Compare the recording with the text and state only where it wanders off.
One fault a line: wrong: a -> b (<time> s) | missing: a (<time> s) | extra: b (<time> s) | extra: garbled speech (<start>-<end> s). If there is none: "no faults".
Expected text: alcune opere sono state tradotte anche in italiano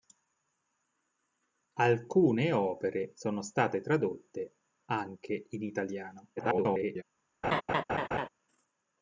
extra: garbled speech (6.4-7.0 s)